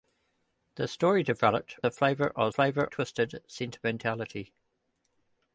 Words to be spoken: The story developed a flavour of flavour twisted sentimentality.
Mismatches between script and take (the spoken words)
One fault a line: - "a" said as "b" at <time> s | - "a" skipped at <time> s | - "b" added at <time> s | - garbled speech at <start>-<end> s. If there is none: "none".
none